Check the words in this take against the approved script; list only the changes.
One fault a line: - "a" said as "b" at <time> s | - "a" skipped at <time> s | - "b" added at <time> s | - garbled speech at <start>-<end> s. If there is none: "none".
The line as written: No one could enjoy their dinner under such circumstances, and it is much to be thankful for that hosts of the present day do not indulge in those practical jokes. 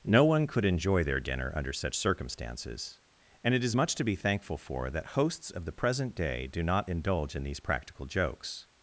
- "those" said as "these" at 7.4 s